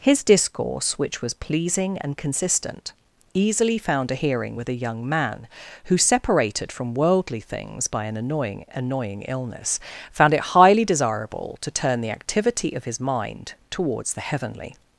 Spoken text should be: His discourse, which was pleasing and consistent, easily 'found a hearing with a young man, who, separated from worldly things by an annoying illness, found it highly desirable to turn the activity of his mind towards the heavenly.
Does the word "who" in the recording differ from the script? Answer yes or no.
no